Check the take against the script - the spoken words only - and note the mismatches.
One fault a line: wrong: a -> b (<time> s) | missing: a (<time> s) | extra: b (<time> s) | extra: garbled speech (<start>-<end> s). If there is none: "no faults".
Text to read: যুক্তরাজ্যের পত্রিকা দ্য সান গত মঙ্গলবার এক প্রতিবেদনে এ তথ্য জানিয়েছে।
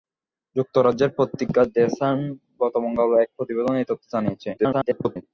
extra: garbled speech (4.6-5.2 s)